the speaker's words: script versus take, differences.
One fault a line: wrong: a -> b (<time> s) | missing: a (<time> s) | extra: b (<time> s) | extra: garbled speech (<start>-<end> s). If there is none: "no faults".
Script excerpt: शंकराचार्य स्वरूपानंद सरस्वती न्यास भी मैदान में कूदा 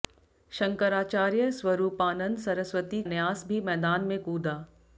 no faults